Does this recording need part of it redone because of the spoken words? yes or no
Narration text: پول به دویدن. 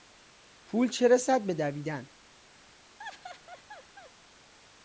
yes